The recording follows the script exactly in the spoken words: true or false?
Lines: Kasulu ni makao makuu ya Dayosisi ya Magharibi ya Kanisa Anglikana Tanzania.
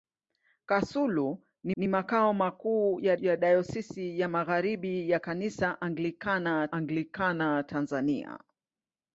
false